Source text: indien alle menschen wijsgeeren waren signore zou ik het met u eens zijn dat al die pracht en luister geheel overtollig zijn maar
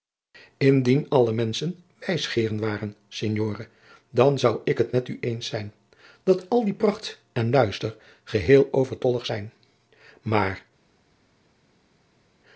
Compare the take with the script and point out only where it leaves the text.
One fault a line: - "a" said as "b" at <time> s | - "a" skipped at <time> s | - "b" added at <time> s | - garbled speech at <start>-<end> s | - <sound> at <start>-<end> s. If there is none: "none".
- "dan" added at 4.1 s